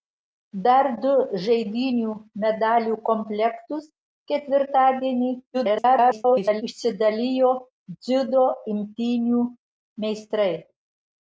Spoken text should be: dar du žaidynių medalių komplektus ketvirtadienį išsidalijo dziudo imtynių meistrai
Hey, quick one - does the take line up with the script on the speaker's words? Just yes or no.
no